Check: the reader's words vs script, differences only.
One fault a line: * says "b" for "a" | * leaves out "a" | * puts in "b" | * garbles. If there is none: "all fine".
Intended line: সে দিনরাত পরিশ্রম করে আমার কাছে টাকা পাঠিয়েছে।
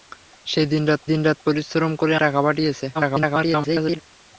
* puts in "দিনরাত"
* leaves out "আমার কাছে"
* garbles